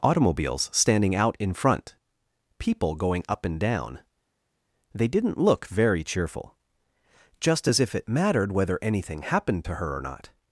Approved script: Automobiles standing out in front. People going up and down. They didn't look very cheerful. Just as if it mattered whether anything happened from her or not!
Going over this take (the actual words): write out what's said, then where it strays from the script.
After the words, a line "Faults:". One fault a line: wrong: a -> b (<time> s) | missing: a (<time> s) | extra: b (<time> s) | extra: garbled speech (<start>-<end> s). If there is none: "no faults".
Automobiles standing out in front. People going up and down. They didn't look very cheerful. Just as if it mattered whether anything happened to her or not!
Faults:
wrong: from -> to (9.6 s)